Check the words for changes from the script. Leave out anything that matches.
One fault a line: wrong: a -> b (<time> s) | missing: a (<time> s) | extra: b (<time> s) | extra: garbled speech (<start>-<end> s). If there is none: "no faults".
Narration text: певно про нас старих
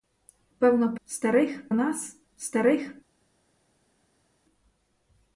wrong: про -> старих (1.1 s)